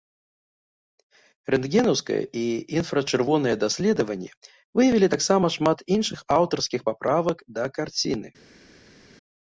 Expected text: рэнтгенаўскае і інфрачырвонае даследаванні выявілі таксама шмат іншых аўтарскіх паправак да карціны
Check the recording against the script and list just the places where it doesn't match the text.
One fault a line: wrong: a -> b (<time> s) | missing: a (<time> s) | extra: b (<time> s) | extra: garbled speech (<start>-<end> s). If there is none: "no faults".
no faults